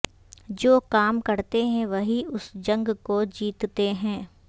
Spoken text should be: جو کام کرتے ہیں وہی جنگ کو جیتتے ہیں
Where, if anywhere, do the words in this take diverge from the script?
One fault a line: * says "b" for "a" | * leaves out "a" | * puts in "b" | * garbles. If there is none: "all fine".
* puts in "اس"